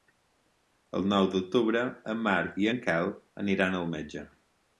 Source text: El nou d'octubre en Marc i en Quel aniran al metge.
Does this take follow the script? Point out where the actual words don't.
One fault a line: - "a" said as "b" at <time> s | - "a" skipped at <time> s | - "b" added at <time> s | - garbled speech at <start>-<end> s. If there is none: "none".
none